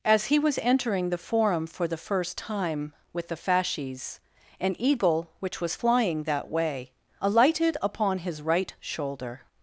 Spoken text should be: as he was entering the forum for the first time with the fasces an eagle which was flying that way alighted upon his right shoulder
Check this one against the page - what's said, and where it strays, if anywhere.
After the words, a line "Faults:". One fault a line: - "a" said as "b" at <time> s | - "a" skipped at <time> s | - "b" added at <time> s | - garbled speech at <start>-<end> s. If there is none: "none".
as he was entering the forum for the first time with the fasces an eagle which was flying that way alighted upon his right shoulder
Faults:
none